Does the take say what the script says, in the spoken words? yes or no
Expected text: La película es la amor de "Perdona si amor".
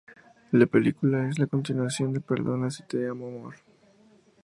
no